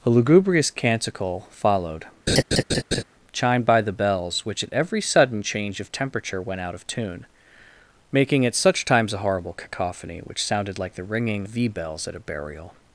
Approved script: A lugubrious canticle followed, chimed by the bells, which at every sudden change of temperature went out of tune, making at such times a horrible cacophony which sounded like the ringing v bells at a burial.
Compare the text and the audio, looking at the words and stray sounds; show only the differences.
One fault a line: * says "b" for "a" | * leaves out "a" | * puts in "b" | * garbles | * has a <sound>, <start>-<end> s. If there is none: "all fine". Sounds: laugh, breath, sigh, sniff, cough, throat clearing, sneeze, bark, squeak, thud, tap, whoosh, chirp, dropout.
* has a laugh, 2.3-3.0 s